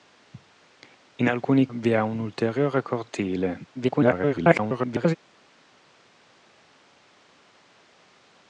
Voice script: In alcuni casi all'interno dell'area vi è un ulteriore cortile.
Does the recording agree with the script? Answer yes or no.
no